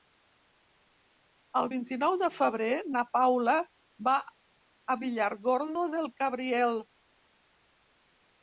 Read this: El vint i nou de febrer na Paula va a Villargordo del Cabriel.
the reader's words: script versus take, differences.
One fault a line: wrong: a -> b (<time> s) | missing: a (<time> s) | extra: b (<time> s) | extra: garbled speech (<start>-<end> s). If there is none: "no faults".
no faults